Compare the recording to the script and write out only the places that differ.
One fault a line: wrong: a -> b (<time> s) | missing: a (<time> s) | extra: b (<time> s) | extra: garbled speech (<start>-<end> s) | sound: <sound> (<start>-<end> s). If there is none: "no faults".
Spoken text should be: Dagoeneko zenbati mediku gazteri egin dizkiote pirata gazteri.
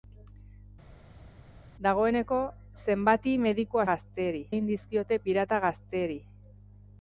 no faults